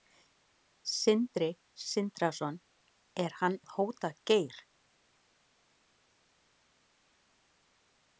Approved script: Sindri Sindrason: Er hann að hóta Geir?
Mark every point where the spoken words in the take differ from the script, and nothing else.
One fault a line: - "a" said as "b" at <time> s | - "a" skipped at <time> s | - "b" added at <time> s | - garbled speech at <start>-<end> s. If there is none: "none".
none